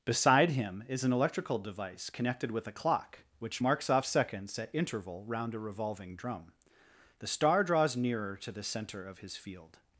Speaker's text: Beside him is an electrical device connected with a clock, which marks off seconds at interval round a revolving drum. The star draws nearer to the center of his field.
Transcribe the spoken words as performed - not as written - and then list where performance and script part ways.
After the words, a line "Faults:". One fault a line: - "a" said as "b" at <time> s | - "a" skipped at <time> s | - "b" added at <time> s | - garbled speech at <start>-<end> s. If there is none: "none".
Beside him is an electrical device connected with a clock, which marks off seconds at interval round a revolving drum. The star draws nearer to the center of his field.
Faults:
none